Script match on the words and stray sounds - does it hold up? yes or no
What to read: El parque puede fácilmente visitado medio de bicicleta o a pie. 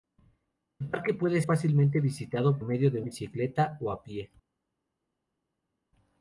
yes